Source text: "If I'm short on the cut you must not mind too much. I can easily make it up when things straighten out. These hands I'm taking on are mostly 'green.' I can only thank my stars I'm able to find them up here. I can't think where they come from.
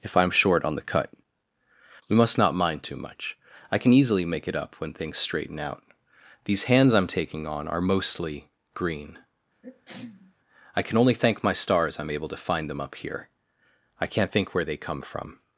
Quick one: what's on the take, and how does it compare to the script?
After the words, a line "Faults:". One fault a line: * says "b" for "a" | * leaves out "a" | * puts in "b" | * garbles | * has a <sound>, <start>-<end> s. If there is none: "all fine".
"If I'm short on the cut we must not mind too much. I can easily make it up when things straighten out. These hands I'm taking on are mostly 'green.' I can only thank my stars I'm able to find them up here. I can't think where they come from.
Faults:
* says "we" for "you"
* has a sneeze, 9.6-10.3 s